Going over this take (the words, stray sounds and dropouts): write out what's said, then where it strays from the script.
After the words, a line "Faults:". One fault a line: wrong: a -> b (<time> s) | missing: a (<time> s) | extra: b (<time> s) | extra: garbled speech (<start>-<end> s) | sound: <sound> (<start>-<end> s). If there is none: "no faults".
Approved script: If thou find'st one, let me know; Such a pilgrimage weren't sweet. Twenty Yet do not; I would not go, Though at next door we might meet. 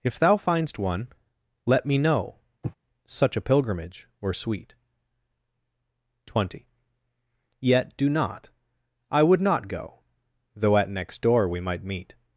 If thou find'st one, let me know; Such a pilgrimage were sweet. Twenty Yet do not; I would not go, Though at next door we might meet.
Faults:
sound: sniff (2.6-2.8 s)
wrong: weren't -> were (4.2 s)